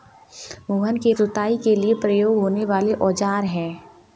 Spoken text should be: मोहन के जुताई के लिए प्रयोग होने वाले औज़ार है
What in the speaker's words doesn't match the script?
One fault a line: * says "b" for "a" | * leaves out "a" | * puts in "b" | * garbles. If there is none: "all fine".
all fine